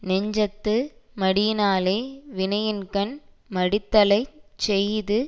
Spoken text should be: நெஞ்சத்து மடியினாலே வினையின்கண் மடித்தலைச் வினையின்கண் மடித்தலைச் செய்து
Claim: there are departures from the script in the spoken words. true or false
true